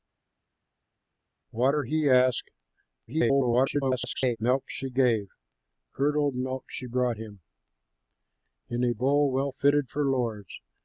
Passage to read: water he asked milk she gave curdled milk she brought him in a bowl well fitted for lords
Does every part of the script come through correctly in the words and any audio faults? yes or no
no